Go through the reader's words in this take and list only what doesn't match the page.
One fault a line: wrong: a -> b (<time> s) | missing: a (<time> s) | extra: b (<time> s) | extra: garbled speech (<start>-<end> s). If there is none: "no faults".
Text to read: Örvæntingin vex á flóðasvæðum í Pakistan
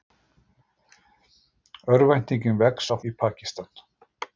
missing: flóðasvæðum (2.9 s)